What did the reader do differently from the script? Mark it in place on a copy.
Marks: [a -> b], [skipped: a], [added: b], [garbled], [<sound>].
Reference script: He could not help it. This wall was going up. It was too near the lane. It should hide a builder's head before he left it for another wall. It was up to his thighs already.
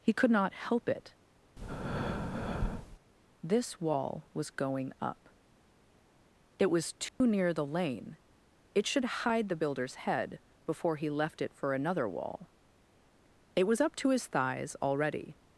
He could not help it. [breath] This wall was going up. It was too [dropout] near the lane. It should hide [a -> the] builder's head before he left it for another wall. It was up to his thighs already.